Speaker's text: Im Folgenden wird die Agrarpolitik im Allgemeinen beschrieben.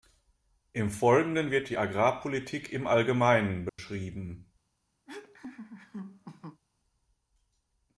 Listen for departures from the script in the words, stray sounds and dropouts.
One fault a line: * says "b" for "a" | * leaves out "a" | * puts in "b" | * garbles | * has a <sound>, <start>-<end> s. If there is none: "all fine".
* has a dropout, 3.7-3.8 s
* has a laugh, 5.1-6.6 s